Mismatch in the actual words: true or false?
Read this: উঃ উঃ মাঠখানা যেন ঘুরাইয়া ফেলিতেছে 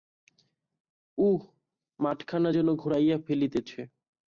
true